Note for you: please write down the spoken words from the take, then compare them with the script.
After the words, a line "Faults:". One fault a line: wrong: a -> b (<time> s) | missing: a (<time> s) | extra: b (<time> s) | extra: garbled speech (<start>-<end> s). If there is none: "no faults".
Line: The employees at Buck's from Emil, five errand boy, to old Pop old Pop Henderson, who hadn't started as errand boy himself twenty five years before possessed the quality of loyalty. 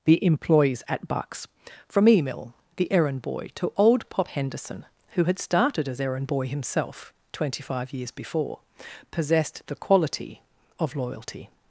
The employees at Buck's from Emil, the errand boy, to old Pop Henderson, who had started as errand boy himself twenty five years before possessed the quality of loyalty.
Faults:
wrong: five -> the (2.8 s)
missing: old Pop (4.3 s)
wrong: hadn't -> had (5.2 s)